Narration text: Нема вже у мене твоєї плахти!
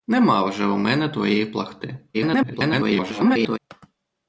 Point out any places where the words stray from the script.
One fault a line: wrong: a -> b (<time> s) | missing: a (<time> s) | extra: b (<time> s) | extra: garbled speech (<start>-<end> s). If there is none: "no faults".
extra: garbled speech (2.1-3.6 s)